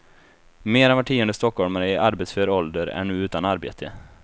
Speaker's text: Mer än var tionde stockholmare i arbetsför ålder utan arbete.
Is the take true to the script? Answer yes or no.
no